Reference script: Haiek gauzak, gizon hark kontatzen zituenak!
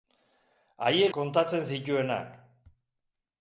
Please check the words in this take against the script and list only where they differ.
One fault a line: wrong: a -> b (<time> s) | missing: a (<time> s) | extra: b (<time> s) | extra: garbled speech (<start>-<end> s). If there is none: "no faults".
missing: gauzak gizon hark (1.1 s)